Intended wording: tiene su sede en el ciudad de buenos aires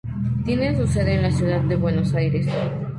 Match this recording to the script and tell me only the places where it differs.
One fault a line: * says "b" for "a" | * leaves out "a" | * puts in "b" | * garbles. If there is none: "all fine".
* says "la" for "el"